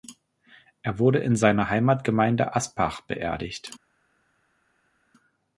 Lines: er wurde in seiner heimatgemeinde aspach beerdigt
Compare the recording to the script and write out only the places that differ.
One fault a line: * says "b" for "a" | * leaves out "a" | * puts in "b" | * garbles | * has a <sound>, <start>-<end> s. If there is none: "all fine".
all fine